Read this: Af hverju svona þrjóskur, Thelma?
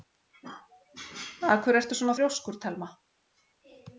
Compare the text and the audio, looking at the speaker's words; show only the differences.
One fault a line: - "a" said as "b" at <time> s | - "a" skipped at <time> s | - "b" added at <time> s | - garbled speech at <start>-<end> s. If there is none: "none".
- "ertu" added at 1.8 s